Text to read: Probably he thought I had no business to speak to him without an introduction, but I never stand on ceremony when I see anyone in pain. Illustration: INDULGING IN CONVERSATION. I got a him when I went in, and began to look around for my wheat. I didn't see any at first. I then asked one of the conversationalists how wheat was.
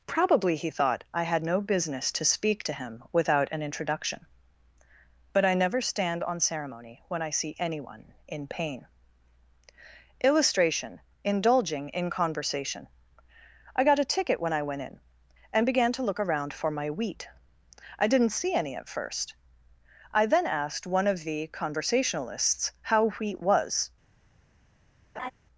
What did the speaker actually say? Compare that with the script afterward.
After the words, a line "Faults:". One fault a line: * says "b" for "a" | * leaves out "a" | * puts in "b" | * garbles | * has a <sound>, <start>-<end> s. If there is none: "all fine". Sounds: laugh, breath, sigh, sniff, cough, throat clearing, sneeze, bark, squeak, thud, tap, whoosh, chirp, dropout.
Probably he thought I had no business to speak to him without an introduction, but I never stand on ceremony when I see anyone in pain. Illustration: INDULGING IN CONVERSATION. I got a ticket when I went in, and began to look around for my wheat. I didn't see any at first. I then asked one of the conversationalists how wheat was.
Faults:
* says "ticket" for "him"
* has a laugh, 25.2-25.3 s